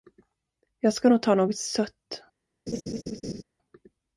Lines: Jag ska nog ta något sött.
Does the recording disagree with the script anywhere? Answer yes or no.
no